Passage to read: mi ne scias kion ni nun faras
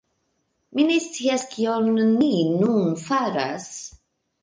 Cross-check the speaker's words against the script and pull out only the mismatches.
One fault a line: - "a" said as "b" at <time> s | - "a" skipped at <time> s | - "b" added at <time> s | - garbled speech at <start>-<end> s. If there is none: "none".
none